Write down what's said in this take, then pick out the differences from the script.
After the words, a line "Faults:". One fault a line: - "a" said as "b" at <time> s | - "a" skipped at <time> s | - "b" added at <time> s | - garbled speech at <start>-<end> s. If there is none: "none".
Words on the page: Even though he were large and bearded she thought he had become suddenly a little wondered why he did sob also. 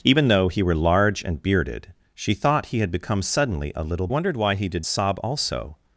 Even though he were large and bearded she thought he had become suddenly a little wondered why he did sob also.
Faults:
none